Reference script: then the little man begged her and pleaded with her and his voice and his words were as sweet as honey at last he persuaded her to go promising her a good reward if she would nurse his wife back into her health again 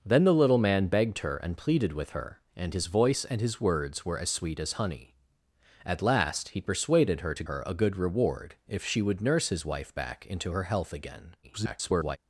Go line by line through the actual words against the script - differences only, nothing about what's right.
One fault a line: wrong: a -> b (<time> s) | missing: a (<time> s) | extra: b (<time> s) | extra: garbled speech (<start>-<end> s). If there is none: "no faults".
missing: go promising (7.4 s)
extra: garbled speech (11.4-12.2 s)